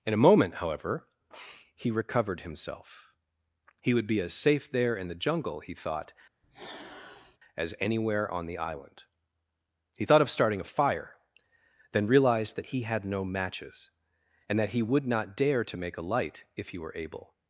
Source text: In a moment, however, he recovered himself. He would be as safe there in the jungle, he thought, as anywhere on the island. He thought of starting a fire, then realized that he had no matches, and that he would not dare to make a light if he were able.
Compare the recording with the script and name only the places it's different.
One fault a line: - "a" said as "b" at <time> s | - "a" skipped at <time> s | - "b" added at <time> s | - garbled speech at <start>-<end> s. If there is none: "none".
none